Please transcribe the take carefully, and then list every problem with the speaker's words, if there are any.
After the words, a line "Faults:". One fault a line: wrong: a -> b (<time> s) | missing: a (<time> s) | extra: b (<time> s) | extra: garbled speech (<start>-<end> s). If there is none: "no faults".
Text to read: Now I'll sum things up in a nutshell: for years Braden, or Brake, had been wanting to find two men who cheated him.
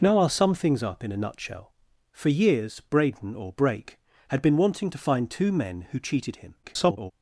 Now I'll sum things up in a nutshell: for years Braden, or Brake, had been wanting to find two men who cheated him. [garbled]
Faults:
extra: garbled speech (6.6-7.1 s)